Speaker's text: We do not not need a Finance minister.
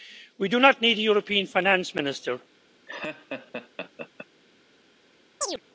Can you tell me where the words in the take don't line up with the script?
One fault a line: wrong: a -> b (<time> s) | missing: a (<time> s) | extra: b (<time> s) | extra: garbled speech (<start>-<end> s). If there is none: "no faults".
missing: not (0.8 s)
extra: European (1.0 s)